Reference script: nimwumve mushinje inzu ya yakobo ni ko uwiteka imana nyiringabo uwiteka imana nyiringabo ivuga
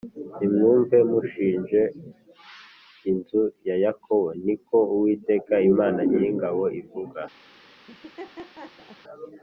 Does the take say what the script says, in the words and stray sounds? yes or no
no